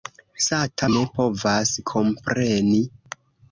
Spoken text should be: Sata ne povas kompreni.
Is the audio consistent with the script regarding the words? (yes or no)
yes